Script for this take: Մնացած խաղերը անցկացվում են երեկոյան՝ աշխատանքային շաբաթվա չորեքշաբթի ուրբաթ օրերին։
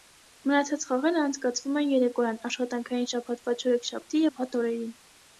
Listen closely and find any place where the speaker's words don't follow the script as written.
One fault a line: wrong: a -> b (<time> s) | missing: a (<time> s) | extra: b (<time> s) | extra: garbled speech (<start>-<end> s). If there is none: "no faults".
no faults